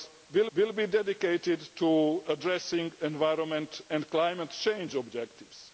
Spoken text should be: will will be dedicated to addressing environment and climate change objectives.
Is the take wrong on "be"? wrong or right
right